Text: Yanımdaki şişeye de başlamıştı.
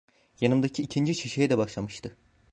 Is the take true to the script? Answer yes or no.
no